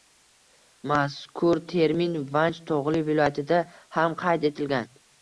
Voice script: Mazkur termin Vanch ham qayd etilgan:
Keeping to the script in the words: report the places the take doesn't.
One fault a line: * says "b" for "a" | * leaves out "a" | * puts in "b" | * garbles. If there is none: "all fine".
* puts in "tog‘li viloyatida"